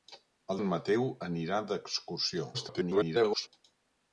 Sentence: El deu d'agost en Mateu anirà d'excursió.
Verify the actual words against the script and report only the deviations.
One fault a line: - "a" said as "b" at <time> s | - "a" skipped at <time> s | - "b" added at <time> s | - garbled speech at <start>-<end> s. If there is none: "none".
- "deu d'agost" skipped at 0.6 s
- garbled speech at 2.5-3.5 s